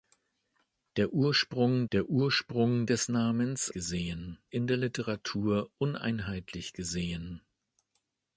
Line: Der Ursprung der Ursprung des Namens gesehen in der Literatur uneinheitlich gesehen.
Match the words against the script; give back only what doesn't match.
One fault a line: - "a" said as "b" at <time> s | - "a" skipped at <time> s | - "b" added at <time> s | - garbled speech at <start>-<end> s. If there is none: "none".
none